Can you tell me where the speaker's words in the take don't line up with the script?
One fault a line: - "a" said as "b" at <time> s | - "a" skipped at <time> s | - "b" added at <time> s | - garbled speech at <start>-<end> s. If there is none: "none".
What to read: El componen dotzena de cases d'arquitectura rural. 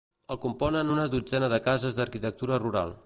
- "una" added at 0.9 s